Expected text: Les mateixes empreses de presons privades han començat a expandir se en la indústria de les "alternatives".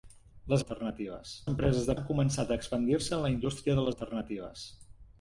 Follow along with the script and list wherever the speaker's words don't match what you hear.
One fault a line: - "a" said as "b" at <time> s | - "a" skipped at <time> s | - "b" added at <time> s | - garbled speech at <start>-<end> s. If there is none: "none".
- "mateixes" said as "alternatives" at 0.6 s
- "presons privades" skipped at 1.9 s
- "les" skipped at 3.9 s